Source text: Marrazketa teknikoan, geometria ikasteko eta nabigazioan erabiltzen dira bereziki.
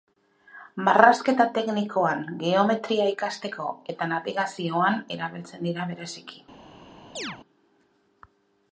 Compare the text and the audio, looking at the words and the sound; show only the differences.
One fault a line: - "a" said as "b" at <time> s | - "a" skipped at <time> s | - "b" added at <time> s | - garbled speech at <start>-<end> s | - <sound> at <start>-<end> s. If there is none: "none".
- chirp at 7.2-7.4 s